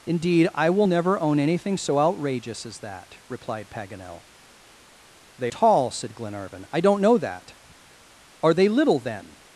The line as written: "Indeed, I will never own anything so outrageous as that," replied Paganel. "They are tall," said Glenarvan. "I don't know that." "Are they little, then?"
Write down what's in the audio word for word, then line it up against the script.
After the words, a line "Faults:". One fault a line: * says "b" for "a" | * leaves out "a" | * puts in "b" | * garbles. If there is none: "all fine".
"Indeed, I will never own anything so outrageous as that," replied Paganel. "They tall," said Glenarvan. "I don't know that." "Are they little, then?"
Faults:
* leaves out "are"